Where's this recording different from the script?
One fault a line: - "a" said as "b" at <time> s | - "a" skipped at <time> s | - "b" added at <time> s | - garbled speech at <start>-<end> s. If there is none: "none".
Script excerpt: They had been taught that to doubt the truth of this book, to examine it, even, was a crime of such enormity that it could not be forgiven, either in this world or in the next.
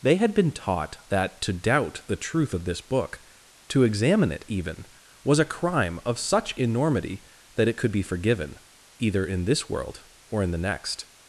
- "not" skipped at 7.9 s